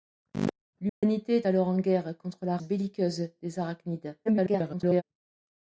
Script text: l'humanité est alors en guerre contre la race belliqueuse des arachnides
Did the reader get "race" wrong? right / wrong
wrong